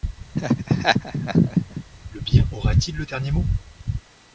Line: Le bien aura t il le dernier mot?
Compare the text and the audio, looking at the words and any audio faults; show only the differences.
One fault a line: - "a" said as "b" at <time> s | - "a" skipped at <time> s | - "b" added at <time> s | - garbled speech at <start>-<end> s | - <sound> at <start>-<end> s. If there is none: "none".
- laugh at 0.3-1.8 s